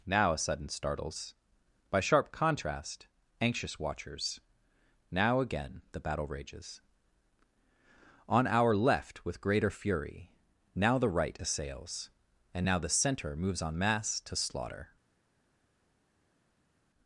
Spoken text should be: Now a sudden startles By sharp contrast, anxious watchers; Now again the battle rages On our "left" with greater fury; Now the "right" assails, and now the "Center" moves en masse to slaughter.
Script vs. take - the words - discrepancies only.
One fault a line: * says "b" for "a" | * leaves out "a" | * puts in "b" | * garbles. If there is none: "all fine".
all fine